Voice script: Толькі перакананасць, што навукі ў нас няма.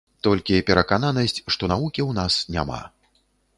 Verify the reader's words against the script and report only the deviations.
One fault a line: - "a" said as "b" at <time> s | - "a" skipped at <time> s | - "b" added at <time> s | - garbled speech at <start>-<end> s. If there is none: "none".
none